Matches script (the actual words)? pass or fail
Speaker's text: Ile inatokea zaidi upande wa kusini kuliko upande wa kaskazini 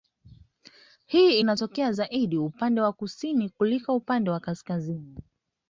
fail